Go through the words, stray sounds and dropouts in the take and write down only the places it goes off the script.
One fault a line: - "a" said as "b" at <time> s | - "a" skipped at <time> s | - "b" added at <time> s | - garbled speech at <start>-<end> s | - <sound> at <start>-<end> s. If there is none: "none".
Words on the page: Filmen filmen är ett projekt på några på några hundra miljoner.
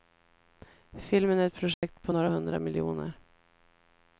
- "filmen" skipped at 1.4 s
- dropout at 1.7-1.8 s
- "på några" skipped at 2.3 s